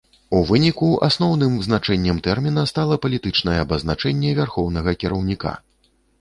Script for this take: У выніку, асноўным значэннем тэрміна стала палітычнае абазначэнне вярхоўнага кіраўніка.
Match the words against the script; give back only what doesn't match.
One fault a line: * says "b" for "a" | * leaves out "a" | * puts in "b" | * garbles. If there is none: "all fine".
all fine